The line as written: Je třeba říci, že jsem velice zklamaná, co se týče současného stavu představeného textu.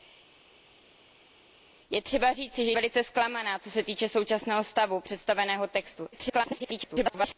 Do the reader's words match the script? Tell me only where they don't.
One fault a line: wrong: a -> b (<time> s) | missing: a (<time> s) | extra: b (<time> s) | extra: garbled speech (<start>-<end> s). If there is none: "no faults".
missing: jsem (2.7 s)
extra: garbled speech (6.1-7.4 s)